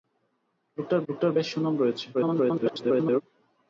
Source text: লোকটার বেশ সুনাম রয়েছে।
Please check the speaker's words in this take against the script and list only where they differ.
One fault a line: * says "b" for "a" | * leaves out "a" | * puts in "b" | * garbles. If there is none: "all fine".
* puts in "লোকটার"
* garbles